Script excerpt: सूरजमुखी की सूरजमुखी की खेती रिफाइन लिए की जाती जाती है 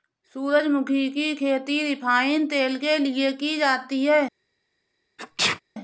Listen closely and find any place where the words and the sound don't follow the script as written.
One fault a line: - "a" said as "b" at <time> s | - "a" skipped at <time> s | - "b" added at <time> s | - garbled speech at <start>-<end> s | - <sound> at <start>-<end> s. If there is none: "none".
- "सूरजमुखी की खेती रिफाइन" said as "खेती रिफाइन तेल के" at 1.4 s
- "जाती" skipped at 4.0 s
- sneeze at 5.2-5.6 s